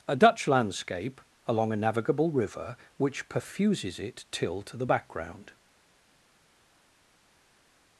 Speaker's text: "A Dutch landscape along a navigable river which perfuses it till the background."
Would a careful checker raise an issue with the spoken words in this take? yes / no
yes